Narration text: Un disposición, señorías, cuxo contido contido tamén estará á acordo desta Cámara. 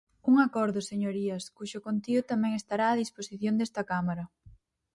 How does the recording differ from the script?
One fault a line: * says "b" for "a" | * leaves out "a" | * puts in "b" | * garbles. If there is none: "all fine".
* says "acordo" for "disposición"
* leaves out "contido"
* says "disposición" for "acordo"